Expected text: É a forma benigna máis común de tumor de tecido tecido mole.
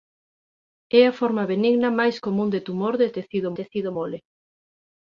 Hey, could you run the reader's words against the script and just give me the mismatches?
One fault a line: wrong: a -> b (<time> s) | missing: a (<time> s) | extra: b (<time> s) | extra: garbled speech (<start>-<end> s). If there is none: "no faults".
no faults